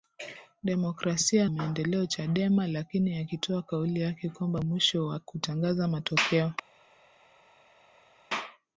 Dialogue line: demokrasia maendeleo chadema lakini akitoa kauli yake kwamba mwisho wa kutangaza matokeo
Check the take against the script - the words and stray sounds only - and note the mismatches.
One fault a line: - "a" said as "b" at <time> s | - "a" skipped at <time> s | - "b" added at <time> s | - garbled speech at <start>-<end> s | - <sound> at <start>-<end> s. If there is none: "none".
none